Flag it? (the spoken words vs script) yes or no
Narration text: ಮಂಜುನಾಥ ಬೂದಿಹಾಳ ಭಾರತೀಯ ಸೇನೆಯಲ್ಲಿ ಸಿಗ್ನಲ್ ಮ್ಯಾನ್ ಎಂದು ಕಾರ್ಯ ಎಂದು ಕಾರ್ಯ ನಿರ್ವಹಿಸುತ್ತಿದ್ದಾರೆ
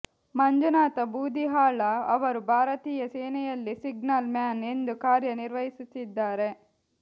yes